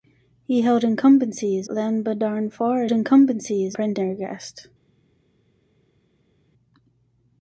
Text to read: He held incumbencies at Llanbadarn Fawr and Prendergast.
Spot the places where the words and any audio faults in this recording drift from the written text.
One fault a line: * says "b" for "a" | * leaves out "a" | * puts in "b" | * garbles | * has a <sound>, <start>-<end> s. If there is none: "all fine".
* leaves out "at"
* says "incumbencies" for "and"